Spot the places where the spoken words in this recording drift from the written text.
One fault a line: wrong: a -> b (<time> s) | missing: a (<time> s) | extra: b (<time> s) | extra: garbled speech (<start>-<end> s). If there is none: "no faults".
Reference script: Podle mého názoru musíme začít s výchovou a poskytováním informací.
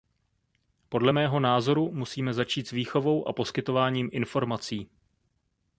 no faults